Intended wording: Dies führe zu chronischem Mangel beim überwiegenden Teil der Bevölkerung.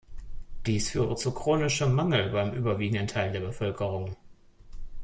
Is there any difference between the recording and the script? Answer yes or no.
no